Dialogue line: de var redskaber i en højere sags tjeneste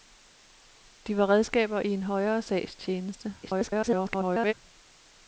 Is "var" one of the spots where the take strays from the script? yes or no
no